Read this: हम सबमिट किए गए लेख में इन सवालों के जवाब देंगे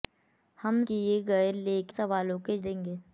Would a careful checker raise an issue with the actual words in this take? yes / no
yes